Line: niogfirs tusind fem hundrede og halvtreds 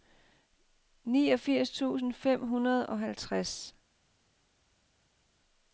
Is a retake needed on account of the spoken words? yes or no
no